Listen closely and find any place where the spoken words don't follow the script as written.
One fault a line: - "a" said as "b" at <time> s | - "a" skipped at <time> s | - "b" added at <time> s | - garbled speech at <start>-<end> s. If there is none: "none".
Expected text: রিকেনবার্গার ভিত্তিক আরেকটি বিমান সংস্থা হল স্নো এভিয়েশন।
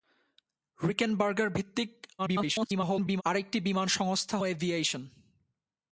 - garbled speech at 2.2-3.2 s
- "হল স্নো" skipped at 4.4 s